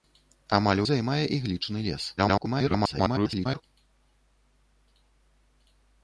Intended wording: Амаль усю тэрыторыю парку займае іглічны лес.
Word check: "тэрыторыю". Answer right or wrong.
wrong